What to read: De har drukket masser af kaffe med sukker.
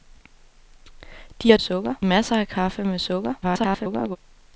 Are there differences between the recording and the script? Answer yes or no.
yes